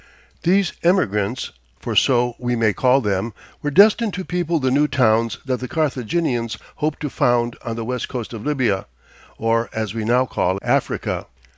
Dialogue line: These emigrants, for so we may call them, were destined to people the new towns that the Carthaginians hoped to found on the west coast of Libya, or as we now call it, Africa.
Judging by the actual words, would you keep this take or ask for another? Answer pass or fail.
fail